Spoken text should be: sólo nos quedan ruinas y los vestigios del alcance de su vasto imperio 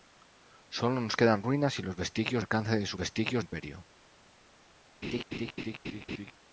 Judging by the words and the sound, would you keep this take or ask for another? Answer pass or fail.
fail